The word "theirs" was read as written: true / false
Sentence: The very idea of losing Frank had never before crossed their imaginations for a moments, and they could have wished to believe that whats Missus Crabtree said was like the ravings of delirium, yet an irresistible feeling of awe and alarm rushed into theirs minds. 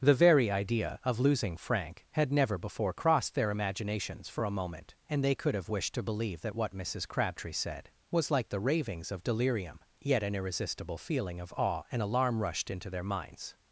false